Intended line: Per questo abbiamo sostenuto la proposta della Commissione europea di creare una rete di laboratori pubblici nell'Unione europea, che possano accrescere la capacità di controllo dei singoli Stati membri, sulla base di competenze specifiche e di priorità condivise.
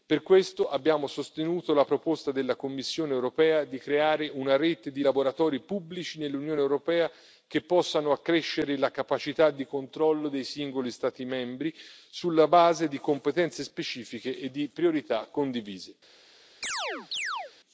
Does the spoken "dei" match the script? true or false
true